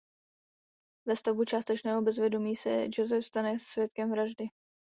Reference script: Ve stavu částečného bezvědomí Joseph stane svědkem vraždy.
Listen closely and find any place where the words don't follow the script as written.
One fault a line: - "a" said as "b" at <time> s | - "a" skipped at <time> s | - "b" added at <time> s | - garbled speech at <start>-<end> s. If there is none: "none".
- "se" added at 2.5 s